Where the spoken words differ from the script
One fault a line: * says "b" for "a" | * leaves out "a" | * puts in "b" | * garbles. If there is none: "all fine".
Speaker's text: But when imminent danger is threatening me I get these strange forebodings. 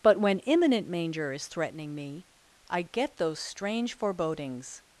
* says "manger" for "danger"
* says "those" for "these"